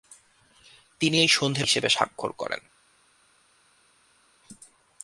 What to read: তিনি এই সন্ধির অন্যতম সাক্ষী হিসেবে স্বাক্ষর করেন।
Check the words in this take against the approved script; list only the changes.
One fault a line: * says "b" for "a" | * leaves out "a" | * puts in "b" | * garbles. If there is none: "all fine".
* leaves out "অন্যতম সাক্ষী"